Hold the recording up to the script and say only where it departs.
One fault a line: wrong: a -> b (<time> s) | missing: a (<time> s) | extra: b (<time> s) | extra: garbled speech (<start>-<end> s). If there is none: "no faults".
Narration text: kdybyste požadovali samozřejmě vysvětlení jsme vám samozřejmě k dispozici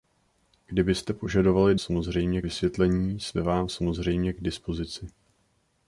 no faults